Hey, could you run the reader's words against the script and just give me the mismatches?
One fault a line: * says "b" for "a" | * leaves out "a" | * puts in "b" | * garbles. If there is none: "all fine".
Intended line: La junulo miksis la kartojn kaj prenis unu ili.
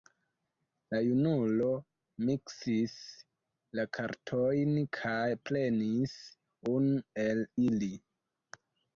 * puts in "el"